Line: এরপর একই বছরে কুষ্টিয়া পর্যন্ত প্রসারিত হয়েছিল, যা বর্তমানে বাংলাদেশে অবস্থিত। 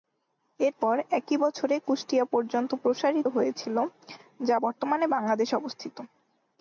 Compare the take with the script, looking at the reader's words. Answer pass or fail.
pass